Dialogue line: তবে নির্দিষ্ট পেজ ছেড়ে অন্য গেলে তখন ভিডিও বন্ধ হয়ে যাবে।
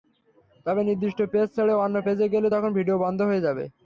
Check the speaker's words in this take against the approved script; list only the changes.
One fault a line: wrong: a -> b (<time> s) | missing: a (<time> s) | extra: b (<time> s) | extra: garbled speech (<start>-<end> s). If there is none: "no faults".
extra: পেজে (2.0 s)